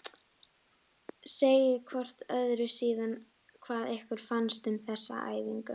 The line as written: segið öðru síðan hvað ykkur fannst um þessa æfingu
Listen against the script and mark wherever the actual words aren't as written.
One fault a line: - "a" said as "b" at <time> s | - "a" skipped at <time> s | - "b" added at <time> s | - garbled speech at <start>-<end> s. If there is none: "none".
- "hvort" added at 1.9 s